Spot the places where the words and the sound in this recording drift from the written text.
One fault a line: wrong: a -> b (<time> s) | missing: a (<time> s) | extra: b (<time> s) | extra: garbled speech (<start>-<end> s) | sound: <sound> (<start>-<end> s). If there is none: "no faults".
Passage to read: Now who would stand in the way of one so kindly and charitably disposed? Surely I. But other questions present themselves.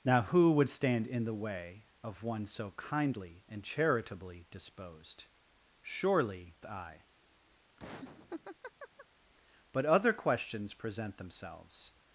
sound: laugh (7.8-9.1 s)